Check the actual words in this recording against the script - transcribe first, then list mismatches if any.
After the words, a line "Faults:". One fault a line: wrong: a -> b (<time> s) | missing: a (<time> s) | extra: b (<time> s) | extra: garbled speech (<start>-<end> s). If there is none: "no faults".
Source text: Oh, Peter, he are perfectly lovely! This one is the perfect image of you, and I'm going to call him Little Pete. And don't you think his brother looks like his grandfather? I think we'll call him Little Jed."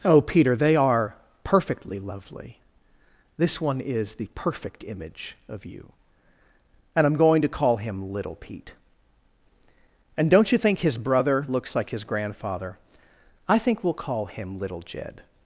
Oh, Peter, they are perfectly lovely! This one is the perfect image of you, and I'm going to call him Little Pete. And don't you think his brother looks like his grandfather? I think we'll call him Little Jed."
Faults:
wrong: he -> they (0.6 s)